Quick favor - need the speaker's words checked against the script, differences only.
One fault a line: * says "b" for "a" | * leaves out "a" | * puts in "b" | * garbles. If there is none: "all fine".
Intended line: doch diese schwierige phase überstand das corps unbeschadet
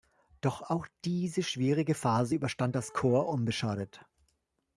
* puts in "auch"